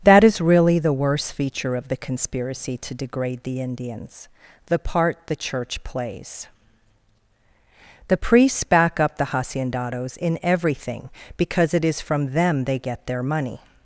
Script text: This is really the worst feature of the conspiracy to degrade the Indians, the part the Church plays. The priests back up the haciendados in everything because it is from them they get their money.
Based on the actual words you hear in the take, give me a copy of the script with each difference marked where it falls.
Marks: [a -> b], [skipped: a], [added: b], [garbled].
[This -> That] is really the worst feature of the conspiracy to degrade the Indians, the part the Church plays. The priests back up the haciendados in everything because it is from them they get their money.